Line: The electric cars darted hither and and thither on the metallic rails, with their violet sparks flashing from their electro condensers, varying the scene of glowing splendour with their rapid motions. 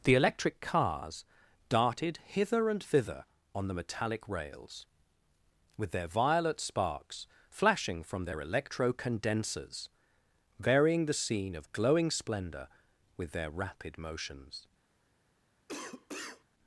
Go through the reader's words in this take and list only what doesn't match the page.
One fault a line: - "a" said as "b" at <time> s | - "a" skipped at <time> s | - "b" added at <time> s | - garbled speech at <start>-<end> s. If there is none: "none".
- "and" skipped at 2.8 s